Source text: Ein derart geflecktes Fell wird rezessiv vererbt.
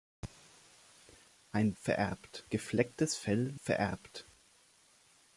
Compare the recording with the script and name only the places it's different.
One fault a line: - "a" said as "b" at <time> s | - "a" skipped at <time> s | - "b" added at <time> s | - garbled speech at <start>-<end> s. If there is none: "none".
- "derart" said as "vererbt" at 1.8 s
- "wird rezessiv" skipped at 3.5 s